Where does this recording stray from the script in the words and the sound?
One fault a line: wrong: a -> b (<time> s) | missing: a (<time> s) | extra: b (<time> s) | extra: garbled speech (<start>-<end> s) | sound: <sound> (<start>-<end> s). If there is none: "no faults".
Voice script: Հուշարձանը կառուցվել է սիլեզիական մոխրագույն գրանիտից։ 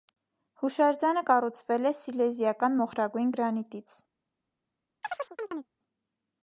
sound: chirp (5.0-5.7 s)